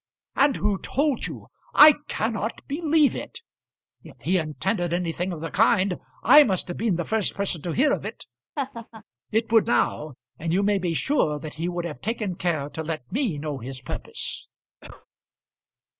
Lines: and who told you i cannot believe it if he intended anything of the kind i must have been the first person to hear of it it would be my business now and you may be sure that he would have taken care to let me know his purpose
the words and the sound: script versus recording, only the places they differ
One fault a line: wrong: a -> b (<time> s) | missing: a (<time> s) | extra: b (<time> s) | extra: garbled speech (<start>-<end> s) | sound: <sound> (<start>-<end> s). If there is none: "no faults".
sound: laugh (8.6-9.0 s)
missing: be my business (9.6 s)
sound: cough (14.8-15.1 s)